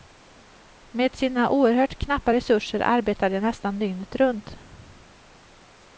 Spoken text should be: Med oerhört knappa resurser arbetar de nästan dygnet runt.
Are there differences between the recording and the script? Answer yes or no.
yes